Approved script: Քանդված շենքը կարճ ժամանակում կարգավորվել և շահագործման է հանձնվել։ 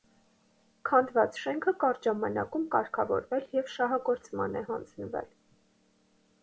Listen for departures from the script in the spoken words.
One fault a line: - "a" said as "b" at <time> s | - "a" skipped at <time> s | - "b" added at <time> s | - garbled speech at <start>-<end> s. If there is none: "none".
none